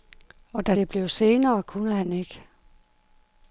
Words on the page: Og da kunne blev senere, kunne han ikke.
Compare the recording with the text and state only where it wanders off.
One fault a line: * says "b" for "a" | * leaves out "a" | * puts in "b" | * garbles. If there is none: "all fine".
* says "det" for "kunne"